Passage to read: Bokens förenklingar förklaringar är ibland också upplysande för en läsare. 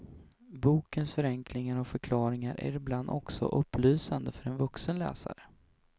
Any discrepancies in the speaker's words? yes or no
yes